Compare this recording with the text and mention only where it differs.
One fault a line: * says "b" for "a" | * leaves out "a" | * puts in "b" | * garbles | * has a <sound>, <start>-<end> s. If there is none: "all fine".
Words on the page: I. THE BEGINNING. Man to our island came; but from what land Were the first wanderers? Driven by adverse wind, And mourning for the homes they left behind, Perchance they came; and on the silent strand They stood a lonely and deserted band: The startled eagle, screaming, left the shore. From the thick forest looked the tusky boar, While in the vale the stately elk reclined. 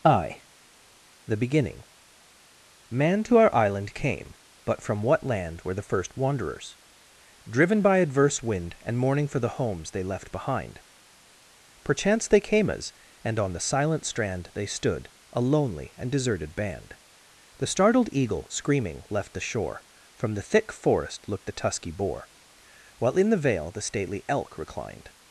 * puts in "as"